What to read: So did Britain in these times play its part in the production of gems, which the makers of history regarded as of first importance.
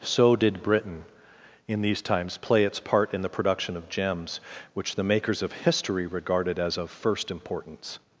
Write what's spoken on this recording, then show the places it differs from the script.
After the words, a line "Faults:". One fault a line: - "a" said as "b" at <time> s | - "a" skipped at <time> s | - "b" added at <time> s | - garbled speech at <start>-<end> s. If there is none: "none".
So did Britain in these times play its part in the production of gems, which the makers of history regarded as of first importance.
Faults:
none